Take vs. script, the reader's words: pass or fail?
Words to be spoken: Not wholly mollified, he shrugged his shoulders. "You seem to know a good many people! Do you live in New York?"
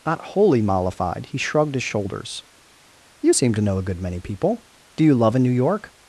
fail